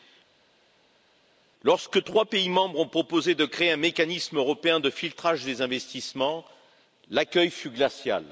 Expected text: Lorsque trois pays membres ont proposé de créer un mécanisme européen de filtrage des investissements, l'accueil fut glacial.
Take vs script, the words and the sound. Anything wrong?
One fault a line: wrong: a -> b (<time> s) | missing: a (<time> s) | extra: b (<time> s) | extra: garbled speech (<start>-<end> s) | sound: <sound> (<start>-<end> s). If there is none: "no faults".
no faults